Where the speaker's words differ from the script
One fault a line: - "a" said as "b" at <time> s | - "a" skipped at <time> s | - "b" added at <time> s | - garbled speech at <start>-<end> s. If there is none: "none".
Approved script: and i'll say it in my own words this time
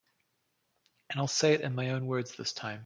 none